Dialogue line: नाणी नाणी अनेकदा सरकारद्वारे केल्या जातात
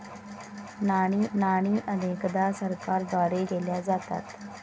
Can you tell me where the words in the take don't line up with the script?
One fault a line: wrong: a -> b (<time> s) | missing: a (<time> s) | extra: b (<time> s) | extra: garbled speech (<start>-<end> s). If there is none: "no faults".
no faults